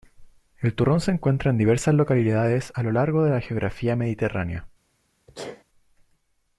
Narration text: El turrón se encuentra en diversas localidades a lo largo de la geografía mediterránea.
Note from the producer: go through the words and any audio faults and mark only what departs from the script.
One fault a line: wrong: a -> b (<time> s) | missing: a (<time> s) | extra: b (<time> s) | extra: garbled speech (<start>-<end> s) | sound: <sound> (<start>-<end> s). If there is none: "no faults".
sound: sneeze (5.3-5.6 s)